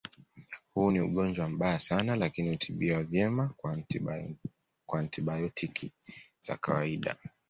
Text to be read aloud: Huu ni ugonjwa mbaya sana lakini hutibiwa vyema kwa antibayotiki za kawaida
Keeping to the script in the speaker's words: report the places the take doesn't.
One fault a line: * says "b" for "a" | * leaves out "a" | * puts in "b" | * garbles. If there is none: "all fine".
all fine